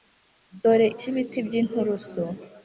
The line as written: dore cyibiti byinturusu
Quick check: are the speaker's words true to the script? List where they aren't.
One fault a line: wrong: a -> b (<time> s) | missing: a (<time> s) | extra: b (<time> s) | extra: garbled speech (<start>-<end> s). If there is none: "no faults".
no faults